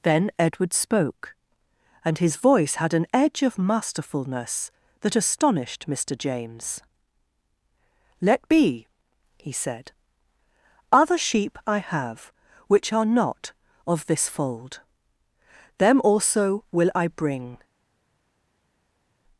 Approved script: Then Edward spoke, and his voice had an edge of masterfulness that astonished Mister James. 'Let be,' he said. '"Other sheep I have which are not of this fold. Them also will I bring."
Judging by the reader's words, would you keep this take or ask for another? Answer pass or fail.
pass